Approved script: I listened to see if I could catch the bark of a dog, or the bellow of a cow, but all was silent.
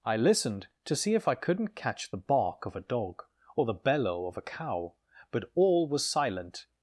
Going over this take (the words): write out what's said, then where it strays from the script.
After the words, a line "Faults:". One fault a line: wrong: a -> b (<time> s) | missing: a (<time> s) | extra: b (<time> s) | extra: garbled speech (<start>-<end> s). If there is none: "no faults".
I listened to see if I couldn't catch the bark of a dog, or the bellow of a cow, but all was silent.
Faults:
wrong: could -> couldn't (1.4 s)